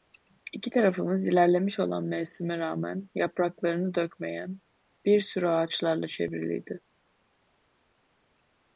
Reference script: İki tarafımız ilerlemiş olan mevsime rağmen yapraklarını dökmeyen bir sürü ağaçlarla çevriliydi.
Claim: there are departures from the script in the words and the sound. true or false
false